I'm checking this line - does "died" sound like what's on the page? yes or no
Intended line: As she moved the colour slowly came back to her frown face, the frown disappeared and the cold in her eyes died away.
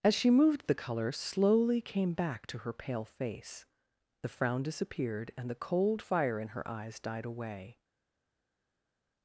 yes